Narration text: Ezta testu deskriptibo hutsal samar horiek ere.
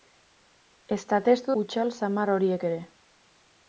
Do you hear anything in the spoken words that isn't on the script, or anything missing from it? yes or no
yes